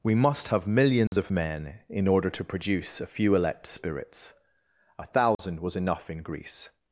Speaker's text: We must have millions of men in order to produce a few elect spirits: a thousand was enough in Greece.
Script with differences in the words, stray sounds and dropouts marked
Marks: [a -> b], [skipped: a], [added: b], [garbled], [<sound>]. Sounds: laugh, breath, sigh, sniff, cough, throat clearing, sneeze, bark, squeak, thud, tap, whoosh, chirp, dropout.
We must have millions [dropout] of men in order to produce a few elect spirits: a thousand [dropout] was enough in Greece.